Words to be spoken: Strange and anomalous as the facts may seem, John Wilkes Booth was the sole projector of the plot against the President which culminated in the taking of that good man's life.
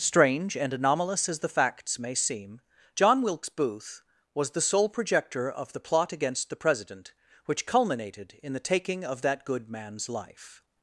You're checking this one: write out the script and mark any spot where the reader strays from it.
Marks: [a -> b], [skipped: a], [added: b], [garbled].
Strange and anomalous as the facts may seem, John Wilkes Booth was the sole projector of the plot against the President which culminated in the taking of that good man's life.